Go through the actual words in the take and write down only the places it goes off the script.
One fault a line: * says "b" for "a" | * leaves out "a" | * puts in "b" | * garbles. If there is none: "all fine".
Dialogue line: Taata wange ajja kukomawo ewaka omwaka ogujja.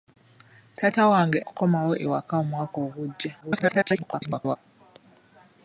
* leaves out "ajja"
* garbles